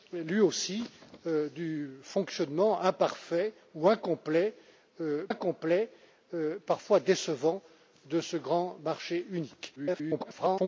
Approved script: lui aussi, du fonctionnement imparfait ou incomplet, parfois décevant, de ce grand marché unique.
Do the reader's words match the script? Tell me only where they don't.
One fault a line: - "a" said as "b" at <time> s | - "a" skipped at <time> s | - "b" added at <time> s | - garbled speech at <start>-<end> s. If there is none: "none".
- "incomplet" added at 5.3 s
- garbled speech at 9.8-10.7 s